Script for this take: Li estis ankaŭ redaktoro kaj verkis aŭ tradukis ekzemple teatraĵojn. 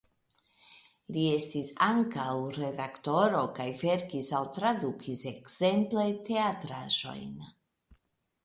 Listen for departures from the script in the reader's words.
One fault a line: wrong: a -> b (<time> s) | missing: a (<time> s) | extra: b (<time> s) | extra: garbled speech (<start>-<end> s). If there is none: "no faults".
no faults